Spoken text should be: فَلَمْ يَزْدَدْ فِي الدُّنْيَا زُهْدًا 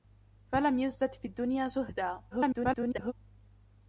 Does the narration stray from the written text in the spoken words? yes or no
yes